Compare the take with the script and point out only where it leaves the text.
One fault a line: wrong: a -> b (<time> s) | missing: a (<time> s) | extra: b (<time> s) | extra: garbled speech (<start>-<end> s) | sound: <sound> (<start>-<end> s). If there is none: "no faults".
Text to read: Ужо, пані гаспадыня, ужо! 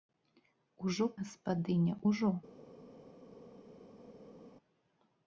missing: пані (1.1 s)